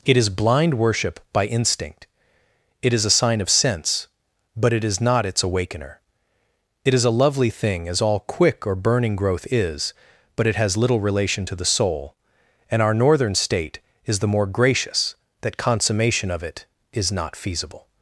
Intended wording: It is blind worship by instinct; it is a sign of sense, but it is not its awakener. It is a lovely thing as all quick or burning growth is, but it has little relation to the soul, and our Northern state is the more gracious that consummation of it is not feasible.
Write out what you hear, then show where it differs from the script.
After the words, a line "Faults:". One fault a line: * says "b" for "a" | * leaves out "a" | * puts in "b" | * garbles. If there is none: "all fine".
It is blind worship by instinct; it is a sign of sense, but it is not its awakener. It is a lovely thing as all quick or burning growth is, but it has little relation to the soul, and our Northern state is the more gracious that consummation of it is not feasible.
Faults:
all fine